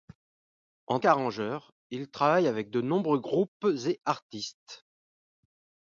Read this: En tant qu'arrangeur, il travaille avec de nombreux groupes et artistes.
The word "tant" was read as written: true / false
false